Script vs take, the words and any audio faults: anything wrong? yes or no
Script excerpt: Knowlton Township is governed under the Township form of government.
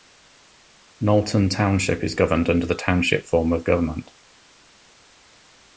no